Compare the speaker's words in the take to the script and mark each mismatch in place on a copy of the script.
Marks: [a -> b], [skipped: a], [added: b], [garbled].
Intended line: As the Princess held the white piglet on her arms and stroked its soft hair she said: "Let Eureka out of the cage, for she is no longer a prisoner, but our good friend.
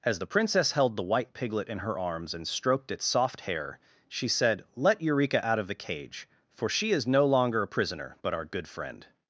As the Princess held the white piglet [on -> in] her arms and stroked its soft hair she said: "Let Eureka out of the cage, for she is no longer a prisoner, but our good friend.